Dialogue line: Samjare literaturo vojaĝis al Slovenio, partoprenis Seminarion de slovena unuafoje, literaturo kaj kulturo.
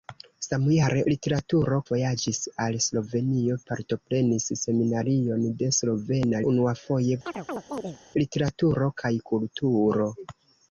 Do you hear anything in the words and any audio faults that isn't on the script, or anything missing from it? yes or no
yes